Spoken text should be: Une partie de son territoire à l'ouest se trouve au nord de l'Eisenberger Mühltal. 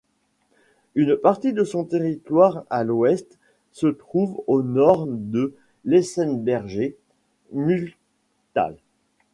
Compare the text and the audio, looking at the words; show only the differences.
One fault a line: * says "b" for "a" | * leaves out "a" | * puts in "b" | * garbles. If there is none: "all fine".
all fine